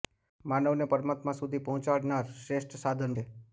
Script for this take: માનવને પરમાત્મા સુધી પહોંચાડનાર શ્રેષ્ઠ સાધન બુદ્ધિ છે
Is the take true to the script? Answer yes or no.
no